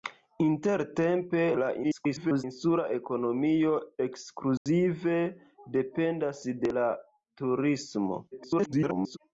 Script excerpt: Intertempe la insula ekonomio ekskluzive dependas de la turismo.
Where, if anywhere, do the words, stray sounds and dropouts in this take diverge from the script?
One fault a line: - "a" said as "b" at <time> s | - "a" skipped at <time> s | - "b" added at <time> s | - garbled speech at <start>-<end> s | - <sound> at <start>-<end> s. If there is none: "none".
- garbled speech at 1.8-2.4 s
- dropout at 4.6-4.7 s
- garbled speech at 8.3-9.2 s